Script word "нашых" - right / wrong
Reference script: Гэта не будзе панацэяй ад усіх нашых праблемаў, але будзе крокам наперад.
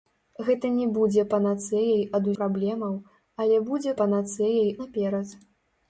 wrong